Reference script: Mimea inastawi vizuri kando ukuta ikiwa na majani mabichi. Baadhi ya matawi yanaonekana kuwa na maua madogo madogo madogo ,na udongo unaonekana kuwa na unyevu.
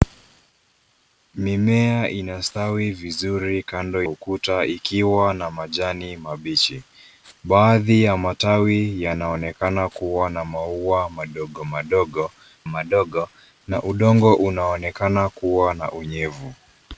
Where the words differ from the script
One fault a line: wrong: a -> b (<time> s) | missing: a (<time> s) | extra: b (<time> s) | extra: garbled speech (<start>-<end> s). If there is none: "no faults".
no faults